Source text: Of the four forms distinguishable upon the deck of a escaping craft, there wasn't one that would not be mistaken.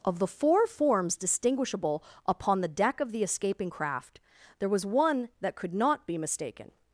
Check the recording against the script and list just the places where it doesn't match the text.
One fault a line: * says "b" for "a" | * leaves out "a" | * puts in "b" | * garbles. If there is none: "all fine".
* says "the" for "a"
* says "was" for "wasn't"
* says "could" for "would"